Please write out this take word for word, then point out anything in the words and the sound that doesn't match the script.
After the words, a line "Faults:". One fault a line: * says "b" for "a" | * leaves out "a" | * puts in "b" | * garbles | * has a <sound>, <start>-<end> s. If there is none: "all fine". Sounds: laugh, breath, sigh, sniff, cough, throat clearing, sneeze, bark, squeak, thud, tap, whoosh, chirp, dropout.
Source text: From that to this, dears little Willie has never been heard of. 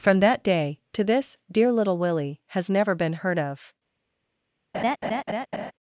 From that day to this, dear little Willie has never been heard of.
Faults:
* puts in "day"
* says "dear" for "dears"
* has a laugh, 4.7-5.7 s